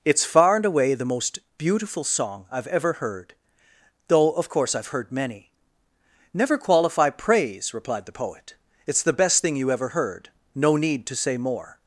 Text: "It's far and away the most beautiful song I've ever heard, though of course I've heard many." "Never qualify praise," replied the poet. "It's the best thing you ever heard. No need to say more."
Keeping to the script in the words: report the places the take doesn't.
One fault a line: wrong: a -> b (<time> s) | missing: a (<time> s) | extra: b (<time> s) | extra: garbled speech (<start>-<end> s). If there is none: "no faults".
no faults